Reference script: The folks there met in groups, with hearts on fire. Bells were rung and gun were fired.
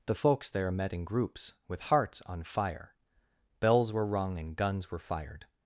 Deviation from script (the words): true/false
true